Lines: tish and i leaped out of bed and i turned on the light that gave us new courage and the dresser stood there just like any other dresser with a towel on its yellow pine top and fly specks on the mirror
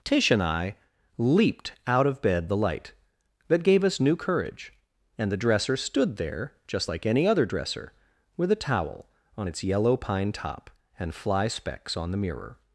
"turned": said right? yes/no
no